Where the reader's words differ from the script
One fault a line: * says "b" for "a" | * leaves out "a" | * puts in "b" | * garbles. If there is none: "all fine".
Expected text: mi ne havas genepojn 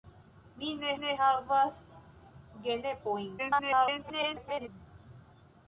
* puts in "ne"
* garbles